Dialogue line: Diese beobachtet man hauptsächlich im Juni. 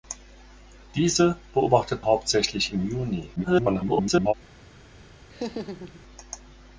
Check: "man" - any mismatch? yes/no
yes